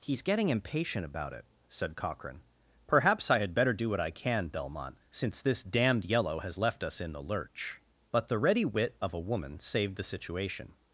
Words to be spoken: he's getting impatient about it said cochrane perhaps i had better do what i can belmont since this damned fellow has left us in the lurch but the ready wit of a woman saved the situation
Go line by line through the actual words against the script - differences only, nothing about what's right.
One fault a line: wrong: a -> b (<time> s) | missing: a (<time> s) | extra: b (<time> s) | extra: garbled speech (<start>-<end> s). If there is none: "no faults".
wrong: fellow -> yellow (6.1 s)